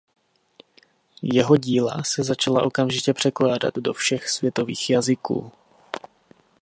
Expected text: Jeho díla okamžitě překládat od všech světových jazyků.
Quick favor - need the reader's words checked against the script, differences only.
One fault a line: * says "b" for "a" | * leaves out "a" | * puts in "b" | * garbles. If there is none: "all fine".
* puts in "se začala"
* says "do" for "od"